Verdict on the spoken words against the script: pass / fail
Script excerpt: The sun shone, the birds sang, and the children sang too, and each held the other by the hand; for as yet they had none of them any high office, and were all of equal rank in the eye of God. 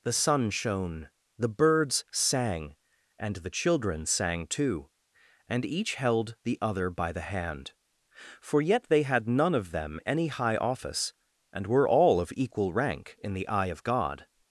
fail